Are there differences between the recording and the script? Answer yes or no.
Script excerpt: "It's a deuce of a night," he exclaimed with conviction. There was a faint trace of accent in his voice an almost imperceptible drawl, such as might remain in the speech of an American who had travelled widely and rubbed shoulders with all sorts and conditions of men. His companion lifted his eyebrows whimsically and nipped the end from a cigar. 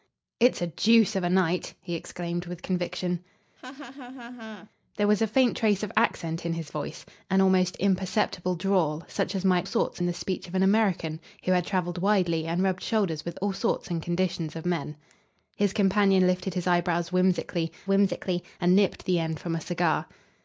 yes